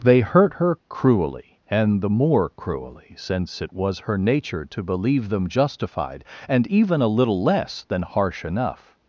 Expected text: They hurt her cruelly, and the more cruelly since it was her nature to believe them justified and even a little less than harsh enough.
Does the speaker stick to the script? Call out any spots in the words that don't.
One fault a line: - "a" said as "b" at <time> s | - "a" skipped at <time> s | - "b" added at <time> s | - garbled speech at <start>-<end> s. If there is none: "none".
none